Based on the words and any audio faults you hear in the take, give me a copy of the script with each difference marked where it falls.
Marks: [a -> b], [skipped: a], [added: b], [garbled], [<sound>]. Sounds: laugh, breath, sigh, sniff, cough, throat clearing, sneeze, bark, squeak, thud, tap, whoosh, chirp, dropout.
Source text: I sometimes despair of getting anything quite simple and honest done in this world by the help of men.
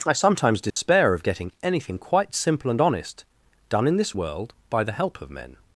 I sometimes despair [dropout] of getting anything quite simple and honest done in this world by the help of men.